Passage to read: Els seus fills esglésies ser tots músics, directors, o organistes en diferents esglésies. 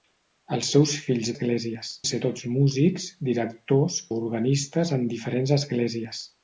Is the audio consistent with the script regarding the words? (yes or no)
yes